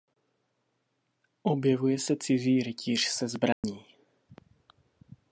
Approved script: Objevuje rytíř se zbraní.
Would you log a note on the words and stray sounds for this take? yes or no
yes